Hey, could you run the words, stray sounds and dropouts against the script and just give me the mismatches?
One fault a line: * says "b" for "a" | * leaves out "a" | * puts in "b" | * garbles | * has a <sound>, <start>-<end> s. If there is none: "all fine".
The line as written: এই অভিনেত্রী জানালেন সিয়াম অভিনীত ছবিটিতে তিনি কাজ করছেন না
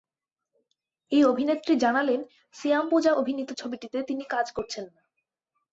* puts in "পূজা"